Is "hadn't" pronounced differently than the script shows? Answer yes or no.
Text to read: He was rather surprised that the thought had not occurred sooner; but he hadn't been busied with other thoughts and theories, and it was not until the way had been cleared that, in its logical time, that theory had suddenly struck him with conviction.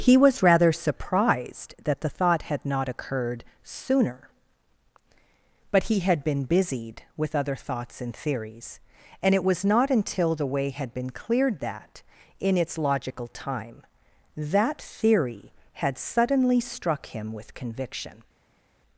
yes